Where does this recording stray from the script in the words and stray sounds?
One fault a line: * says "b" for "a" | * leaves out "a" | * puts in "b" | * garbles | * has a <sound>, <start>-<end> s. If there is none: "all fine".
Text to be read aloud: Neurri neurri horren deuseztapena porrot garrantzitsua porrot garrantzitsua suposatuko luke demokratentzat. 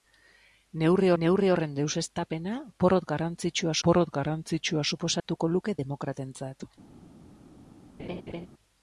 * has a dropout, 5.2-5.2 s
* has a laugh, 8.0-8.5 s